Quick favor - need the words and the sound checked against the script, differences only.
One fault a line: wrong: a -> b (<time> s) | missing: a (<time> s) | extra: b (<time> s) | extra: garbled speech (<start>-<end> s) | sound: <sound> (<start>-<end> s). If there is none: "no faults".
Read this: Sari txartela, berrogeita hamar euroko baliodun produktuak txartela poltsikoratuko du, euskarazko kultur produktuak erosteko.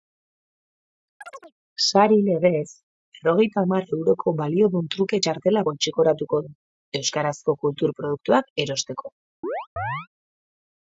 sound: chirp (1.2-1.5 s)
wrong: txartela -> legez (2.3 s)
wrong: produktuak -> truke (5.0 s)
sound: chirp (9.4-10.1 s)